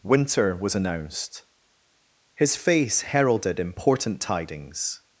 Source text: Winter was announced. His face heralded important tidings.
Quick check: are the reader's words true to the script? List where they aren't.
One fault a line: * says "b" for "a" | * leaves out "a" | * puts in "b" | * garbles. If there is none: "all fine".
all fine